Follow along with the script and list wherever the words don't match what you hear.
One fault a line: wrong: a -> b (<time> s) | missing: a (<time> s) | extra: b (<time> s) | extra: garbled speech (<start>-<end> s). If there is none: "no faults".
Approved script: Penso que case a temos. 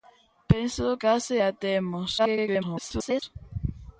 missing: que (0.9 s)
extra: garbled speech (2.2-3.2 s)